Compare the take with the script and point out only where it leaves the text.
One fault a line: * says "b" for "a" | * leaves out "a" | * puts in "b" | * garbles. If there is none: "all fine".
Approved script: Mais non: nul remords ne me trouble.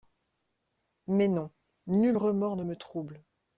all fine